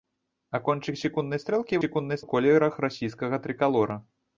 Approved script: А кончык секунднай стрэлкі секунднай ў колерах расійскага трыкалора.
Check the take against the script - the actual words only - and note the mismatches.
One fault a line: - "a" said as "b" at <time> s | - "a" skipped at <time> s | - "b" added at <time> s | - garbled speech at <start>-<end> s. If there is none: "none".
none